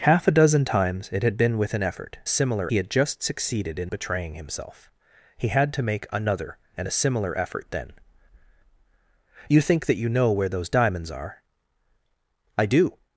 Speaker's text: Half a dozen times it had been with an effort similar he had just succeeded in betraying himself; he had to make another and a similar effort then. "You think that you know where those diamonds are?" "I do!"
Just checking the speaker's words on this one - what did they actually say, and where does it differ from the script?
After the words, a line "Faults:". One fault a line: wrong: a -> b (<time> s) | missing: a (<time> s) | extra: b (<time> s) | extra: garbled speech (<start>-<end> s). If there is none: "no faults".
Half a dozen times it had been with an effort similar he had just succeeded in betraying himself; he had to make another and a similar effort then. "You think that you know where those diamonds are?" "I do!"
Faults:
no faults